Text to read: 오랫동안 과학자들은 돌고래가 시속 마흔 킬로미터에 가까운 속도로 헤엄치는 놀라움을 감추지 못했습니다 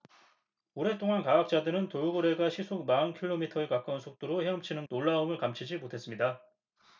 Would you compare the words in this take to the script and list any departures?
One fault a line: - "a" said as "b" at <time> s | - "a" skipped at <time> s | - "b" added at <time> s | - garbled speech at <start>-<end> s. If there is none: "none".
none